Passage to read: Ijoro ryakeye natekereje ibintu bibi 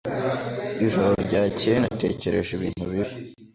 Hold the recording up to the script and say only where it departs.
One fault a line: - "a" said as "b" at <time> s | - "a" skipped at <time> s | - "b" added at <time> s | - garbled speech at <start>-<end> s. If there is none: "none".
none